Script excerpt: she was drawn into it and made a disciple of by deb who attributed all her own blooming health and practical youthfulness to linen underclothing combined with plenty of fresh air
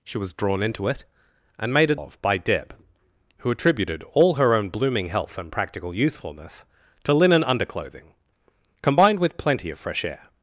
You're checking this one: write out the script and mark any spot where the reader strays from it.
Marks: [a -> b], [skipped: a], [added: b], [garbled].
she was drawn into it and made a [skipped: disciple] of by deb who attributed all her own blooming health and practical youthfulness to linen underclothing combined with plenty of fresh air